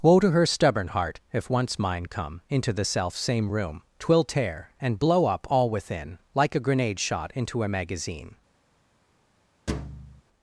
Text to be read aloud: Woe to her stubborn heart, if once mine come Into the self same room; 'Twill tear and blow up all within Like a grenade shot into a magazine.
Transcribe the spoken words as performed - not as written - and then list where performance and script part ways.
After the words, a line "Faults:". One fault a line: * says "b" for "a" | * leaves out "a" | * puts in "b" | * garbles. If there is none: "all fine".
Woe to her stubborn heart, if once mine come Into the self same room; 'Twill tear and blow up all within Like a grenade shot into a magazine.
Faults:
all fine